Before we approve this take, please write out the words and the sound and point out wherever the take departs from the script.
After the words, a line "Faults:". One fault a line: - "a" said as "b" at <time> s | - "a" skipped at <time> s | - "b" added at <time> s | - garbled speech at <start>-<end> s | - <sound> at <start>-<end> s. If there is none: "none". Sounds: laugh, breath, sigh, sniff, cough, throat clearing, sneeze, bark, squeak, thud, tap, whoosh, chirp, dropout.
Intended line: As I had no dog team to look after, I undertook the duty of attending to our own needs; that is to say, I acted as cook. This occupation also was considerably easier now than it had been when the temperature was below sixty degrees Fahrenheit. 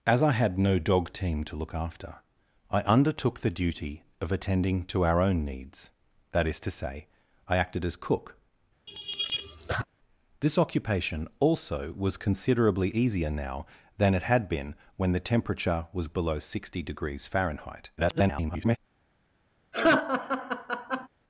As I had no dog team to look after, I undertook the duty of attending to our own needs; that is to say, I acted as cook. This occupation also was considerably easier now than it had been when the temperature was below sixty degrees Fahrenheit. [garbled]
Faults:
- laugh at 8.9-9.9 s
- garbled speech at 18.0-18.8 s
- laugh at 19.7-21.1 s